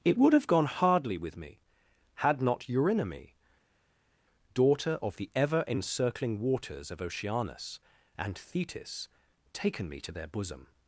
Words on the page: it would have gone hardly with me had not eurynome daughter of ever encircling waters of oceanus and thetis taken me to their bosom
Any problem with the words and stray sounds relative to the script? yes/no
yes